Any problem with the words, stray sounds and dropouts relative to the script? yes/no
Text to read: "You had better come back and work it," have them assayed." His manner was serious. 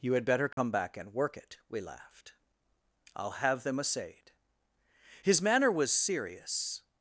yes